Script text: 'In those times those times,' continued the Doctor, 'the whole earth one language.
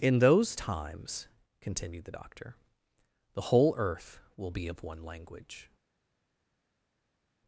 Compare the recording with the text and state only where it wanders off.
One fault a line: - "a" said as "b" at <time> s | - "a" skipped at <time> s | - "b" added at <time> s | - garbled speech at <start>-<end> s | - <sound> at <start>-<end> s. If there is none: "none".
- "those times" skipped at 1.3 s
- "will be of" added at 4.4 s